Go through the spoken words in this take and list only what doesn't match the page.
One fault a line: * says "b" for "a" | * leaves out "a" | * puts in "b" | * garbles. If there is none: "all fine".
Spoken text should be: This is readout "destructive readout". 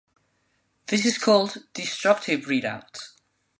* says "called" for "readout"